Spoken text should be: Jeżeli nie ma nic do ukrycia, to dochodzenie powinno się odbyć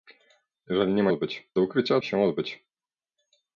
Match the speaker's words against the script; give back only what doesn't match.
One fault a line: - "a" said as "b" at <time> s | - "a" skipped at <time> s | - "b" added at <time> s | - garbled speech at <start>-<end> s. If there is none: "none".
- "nic" said as "odbyć" at 1.1 s
- "to dochodzenie powinno" skipped at 2.0 s